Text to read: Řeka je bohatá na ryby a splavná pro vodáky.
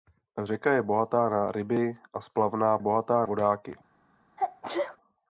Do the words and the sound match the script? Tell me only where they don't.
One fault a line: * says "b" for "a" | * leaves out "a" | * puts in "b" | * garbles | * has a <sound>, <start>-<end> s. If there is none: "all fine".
* says "bohatá" for "pro"
* has a sneeze, 4.4-5.0 s